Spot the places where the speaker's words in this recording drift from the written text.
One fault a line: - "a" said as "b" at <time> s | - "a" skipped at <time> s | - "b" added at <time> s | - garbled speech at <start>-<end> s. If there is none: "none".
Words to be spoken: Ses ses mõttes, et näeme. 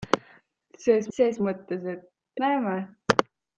none